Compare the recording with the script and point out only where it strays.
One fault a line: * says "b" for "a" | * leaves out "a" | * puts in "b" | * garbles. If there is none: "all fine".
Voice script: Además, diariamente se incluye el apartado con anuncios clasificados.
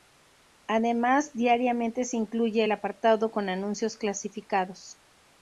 all fine